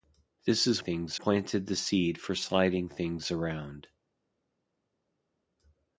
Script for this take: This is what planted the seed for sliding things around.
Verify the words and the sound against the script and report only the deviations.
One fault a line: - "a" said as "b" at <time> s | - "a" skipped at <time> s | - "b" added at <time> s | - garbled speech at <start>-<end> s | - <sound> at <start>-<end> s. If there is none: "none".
- "what" said as "things" at 0.8 s